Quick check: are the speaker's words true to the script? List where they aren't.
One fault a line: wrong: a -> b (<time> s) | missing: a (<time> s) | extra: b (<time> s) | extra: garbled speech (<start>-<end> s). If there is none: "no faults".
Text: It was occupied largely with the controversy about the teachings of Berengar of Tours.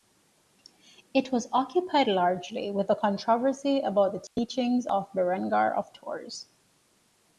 no faults